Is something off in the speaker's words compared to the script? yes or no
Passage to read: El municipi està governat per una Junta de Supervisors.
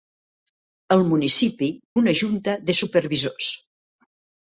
yes